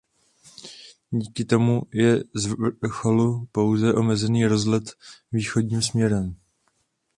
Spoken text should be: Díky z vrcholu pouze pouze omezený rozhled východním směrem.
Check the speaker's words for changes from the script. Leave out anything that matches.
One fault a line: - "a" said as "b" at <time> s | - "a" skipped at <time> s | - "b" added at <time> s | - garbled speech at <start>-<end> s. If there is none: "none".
- "tomu je" added at 1.4 s
- "pouze" skipped at 3.9 s